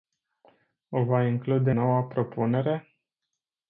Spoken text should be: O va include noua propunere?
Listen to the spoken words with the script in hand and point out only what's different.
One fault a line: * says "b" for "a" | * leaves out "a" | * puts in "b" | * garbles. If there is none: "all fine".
all fine